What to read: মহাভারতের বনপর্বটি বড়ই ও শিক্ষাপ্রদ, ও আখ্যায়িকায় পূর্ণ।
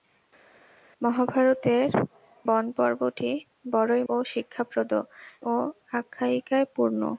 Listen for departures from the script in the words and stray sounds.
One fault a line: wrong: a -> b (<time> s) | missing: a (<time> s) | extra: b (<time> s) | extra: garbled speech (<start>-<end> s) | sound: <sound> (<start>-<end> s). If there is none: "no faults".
no faults